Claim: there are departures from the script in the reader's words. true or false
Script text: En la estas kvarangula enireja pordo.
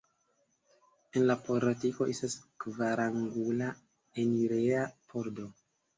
true